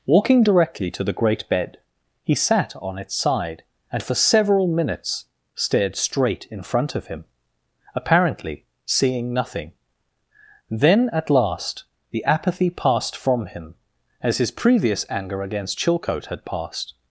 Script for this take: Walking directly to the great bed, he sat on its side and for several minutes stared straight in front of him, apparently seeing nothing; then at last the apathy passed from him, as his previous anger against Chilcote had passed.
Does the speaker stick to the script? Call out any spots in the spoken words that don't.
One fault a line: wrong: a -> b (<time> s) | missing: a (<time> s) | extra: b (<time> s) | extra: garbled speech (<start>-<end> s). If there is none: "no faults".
no faults